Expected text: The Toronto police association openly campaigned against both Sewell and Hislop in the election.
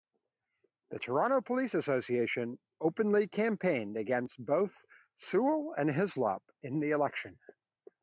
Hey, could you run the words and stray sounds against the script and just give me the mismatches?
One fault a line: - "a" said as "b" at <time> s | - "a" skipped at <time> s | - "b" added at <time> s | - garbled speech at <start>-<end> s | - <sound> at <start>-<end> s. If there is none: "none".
none